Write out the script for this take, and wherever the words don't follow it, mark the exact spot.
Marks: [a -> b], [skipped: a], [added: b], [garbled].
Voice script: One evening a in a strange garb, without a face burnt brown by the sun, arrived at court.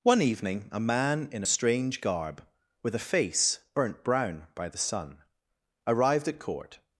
One evening a [added: man] in a strange garb, [without -> with] a face burnt brown by the sun, arrived at court.